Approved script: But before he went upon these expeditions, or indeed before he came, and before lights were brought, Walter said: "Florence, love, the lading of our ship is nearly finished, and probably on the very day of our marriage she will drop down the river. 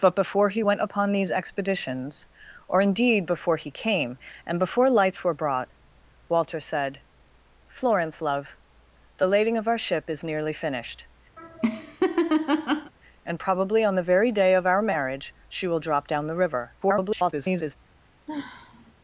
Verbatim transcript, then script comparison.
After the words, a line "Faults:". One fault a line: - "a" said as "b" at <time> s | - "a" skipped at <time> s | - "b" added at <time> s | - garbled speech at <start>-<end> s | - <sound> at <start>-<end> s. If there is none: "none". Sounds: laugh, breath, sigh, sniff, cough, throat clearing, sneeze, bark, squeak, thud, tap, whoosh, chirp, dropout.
But before he went upon these expeditions, or indeed before he came, and before lights were brought, Walter said: "Florence, love, the lading of our ship is nearly finished, and probably on the very day of our marriage she will drop down the river. [garbled]
Faults:
- laugh at 11.4-12.9 s
- garbled speech at 16.8-17.8 s
- sigh at 18.3-18.9 s